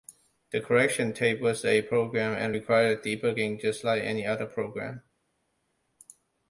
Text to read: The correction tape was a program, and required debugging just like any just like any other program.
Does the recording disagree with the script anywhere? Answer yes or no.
yes